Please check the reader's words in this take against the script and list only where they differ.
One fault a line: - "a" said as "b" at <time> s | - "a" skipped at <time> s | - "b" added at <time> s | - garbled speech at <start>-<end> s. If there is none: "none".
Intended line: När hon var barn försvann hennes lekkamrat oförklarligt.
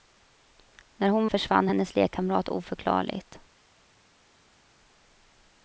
- "var barn" skipped at 1.3 s